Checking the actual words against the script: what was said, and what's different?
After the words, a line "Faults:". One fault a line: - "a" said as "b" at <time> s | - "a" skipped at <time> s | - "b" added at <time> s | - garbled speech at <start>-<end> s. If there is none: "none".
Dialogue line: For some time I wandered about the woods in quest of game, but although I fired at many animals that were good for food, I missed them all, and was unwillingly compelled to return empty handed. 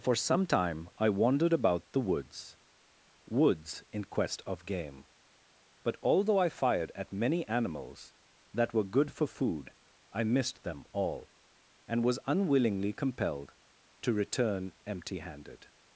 For some time I wandered about the woods woods in quest of game, but although I fired at many animals that were good for food, I missed them all, and was unwillingly compelled to return empty handed.
Faults:
- "woods" added at 3.3 s